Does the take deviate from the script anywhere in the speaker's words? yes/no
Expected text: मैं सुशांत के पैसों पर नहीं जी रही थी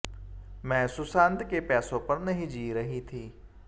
no